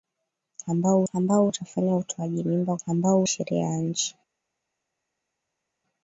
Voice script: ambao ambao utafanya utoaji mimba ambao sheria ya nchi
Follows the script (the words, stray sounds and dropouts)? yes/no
yes